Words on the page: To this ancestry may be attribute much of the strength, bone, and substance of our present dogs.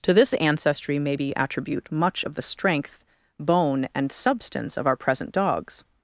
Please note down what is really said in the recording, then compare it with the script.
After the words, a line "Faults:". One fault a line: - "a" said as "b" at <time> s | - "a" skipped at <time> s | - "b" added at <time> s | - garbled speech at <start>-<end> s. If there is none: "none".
To this ancestry may be attribute much of the strength, bone, and substance of our present dogs.
Faults:
none